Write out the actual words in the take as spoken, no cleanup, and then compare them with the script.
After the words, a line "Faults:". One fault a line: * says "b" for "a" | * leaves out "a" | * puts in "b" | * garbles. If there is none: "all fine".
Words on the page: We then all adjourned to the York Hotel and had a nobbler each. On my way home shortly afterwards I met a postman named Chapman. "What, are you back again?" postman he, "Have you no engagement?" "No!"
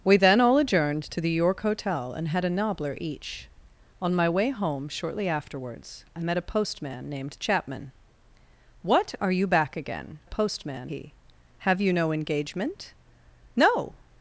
We then all adjourned to the York Hotel and had a nobbler each. On my way home shortly afterwards I met a postman named Chapman. "What, are you back again?" postman he, "Have you no engagement?" "No!"
Faults:
all fine